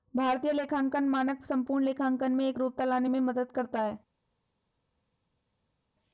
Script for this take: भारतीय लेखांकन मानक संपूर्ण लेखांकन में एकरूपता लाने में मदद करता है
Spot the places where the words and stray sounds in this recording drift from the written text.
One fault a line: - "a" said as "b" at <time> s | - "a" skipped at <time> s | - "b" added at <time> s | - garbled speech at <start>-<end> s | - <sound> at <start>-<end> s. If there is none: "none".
none